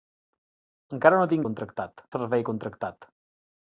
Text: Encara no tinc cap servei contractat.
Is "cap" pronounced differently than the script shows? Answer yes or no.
yes